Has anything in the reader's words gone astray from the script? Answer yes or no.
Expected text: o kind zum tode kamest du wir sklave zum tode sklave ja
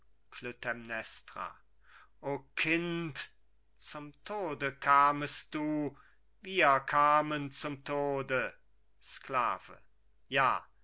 yes